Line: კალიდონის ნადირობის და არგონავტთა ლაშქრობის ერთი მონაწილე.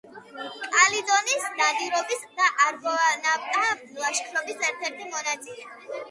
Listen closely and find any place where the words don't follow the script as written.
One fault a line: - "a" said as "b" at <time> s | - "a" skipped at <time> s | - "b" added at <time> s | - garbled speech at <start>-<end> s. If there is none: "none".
- "ერთ" added at 4.7 s